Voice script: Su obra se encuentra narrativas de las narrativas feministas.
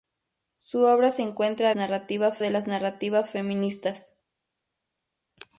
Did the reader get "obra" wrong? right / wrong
right